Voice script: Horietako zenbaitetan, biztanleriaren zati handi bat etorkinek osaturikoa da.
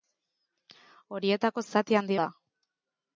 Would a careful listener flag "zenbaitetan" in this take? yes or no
yes